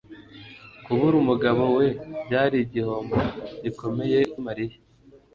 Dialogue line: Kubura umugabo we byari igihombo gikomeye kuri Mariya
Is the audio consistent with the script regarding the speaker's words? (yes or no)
no